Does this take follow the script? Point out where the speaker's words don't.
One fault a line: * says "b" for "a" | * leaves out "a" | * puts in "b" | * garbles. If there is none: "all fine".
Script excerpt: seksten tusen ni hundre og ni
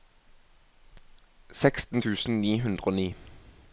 all fine